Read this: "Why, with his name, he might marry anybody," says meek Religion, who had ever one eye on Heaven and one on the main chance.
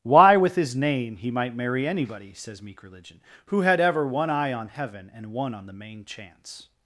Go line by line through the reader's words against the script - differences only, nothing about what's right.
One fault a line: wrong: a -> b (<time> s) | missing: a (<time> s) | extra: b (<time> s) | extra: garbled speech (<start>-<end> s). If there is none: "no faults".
no faults